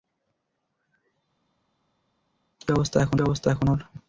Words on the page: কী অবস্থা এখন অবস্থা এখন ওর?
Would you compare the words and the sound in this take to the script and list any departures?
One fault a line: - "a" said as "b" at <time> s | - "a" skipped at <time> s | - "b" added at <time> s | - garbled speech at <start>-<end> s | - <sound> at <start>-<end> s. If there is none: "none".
none